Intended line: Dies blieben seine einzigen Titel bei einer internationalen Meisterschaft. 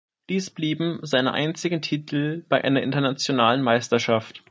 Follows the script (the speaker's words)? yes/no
yes